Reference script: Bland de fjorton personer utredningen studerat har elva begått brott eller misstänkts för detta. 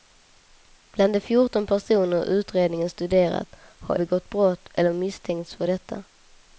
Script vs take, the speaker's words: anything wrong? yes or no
yes